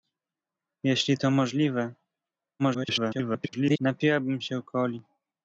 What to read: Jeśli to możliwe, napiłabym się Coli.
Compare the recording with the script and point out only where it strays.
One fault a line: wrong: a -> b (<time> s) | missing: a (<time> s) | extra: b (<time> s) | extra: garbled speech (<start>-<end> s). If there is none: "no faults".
extra: garbled speech (2.6-3.8 s)